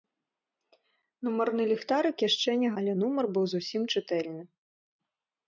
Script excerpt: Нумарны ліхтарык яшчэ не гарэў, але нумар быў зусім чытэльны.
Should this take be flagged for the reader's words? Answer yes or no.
yes